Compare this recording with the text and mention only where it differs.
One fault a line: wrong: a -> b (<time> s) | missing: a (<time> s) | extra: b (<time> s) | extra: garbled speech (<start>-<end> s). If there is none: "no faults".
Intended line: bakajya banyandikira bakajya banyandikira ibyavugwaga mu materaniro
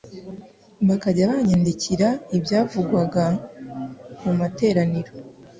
missing: bakajya banyandikira (2.1 s)